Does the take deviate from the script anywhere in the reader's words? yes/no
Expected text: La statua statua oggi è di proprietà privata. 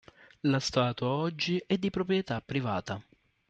yes